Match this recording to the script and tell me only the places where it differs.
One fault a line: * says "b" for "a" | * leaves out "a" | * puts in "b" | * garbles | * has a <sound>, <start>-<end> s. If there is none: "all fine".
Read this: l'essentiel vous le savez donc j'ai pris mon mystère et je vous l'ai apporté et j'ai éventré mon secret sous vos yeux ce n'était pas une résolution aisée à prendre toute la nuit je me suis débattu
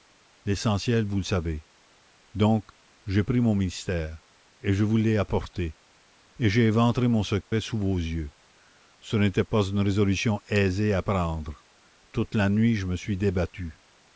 * has a dropout, 7.4-7.5 s